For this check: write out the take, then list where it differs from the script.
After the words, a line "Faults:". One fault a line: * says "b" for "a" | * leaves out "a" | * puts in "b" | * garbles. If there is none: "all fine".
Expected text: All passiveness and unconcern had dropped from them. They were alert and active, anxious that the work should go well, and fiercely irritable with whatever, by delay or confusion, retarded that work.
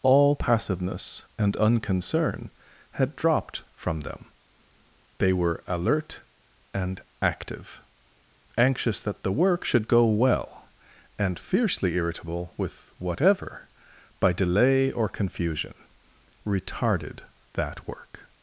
All passiveness and unconcern had dropped from them. They were alert and active, anxious that the work should go well, and fiercely irritable with whatever, by delay or confusion, retarded that work.
Faults:
all fine